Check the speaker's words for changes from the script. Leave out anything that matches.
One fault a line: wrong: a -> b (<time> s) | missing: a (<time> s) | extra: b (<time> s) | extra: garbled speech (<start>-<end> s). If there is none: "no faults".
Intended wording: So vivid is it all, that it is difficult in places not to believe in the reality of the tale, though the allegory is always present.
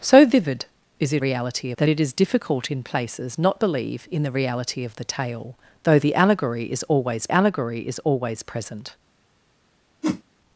wrong: all -> reality (1.2 s)
missing: to (3.6 s)
extra: allegory is always (7.3 s)